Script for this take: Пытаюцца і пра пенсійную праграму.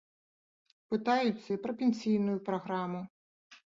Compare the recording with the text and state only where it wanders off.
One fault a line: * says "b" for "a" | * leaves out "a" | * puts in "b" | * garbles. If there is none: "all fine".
all fine